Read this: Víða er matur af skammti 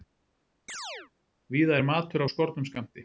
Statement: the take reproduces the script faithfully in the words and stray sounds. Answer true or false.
false